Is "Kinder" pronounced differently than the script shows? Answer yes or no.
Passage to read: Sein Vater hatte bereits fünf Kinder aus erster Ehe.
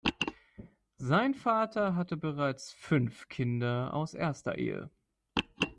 no